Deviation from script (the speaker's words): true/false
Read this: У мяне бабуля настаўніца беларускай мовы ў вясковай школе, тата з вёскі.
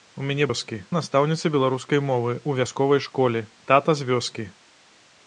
true